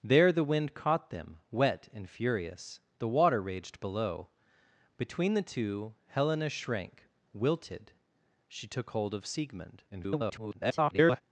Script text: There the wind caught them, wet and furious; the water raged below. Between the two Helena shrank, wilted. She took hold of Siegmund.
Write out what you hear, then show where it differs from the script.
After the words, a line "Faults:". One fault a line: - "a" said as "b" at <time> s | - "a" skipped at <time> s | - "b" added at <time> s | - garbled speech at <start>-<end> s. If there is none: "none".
There the wind caught them, wet and furious; the water raged below. Between the two Helena shrank, wilted. She took hold of Siegmund. [garbled]
Faults:
- garbled speech at 9.9-11.2 s